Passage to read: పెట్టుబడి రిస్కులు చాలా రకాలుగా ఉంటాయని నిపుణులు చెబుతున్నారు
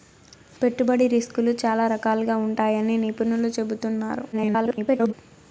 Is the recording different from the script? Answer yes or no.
yes